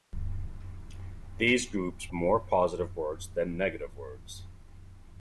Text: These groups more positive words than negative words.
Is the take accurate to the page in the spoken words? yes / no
yes